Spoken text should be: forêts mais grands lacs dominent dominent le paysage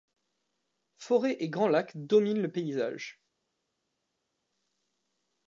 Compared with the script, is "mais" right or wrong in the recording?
wrong